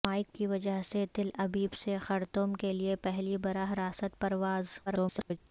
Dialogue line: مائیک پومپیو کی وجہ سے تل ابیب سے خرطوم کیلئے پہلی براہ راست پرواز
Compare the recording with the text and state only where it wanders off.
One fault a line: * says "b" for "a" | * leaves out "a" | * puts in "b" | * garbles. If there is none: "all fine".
* leaves out "پومپیو"
* garbles